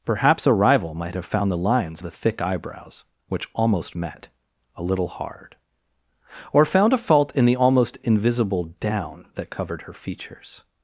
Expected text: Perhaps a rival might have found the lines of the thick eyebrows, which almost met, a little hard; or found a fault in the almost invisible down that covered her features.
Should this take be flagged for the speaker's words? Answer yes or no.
yes